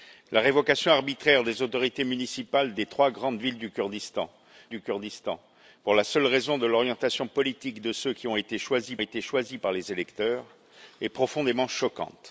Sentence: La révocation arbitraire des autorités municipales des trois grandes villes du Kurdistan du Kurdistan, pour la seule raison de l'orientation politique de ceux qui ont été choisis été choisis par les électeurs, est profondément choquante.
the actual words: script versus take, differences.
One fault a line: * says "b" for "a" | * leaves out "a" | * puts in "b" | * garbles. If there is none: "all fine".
all fine